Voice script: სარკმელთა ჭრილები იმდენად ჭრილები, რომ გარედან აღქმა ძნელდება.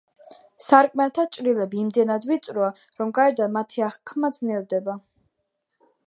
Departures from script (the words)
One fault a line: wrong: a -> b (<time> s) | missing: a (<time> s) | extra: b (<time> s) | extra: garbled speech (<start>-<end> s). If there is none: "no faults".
wrong: ჭრილები -> ვიწროა (2.3 s)
extra: მათი (3.6 s)